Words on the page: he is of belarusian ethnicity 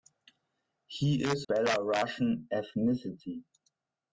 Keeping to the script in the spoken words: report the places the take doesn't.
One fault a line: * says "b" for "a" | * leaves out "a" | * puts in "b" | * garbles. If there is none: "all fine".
* leaves out "of"